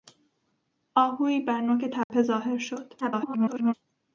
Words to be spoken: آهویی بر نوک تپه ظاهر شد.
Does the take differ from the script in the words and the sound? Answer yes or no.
yes